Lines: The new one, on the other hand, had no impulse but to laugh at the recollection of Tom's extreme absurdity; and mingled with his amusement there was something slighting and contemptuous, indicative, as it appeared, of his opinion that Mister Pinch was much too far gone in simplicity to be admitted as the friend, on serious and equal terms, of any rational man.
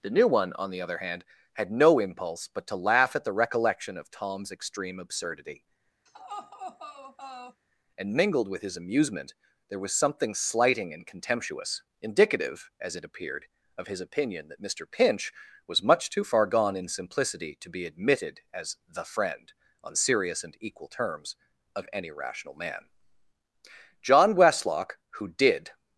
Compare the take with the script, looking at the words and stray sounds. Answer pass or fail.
fail